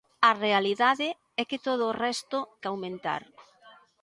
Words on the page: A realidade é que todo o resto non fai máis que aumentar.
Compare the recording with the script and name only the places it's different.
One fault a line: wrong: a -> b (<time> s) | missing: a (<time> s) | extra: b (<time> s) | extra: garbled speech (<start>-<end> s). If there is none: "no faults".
missing: non fai máis (2.4 s)